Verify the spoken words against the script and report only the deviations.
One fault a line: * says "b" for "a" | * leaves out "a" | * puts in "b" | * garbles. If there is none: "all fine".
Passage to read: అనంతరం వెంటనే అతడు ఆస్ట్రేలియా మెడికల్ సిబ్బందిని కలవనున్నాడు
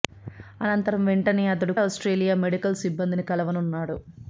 all fine